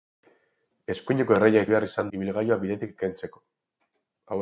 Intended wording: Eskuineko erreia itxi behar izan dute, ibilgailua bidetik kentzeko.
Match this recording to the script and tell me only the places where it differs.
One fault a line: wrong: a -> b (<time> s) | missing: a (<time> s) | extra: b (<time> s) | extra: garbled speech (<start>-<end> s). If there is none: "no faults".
missing: itxi (1.6 s)
missing: dute (2.1 s)